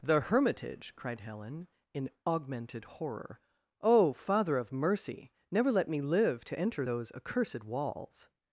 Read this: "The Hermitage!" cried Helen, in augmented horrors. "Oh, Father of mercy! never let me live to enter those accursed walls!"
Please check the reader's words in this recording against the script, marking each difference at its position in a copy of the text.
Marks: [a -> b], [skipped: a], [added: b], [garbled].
"The Hermitage!" cried Helen, in augmented [horrors. -> horror] "Oh, Father of mercy! never let me live to enter those accursed walls!"